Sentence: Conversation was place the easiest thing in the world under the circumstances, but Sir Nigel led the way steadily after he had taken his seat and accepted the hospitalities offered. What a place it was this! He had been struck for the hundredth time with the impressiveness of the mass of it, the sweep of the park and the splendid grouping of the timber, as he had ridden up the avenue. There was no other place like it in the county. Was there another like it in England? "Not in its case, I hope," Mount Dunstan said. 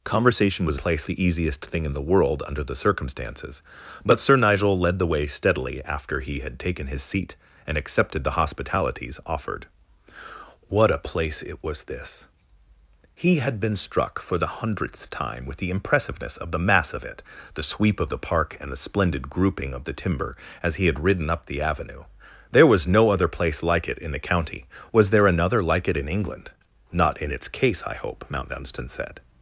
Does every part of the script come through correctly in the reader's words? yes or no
yes